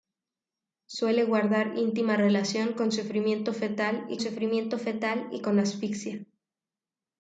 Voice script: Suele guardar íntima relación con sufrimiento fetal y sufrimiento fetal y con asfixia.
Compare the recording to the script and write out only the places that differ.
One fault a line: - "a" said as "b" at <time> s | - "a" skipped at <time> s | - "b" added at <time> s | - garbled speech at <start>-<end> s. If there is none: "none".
none